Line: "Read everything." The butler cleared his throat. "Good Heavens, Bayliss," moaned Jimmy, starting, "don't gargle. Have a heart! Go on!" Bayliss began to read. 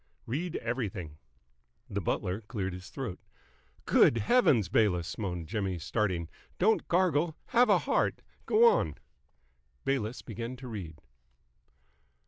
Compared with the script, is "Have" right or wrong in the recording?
right